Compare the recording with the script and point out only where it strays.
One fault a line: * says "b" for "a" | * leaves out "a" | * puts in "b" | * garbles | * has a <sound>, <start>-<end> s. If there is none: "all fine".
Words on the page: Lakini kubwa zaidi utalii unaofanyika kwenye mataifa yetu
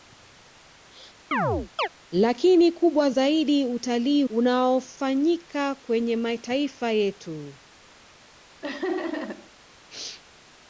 * has a chirp, 1.3-1.9 s
* has a laugh, 8.6-9.5 s